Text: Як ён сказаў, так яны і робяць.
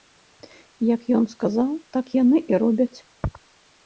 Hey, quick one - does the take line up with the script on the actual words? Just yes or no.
yes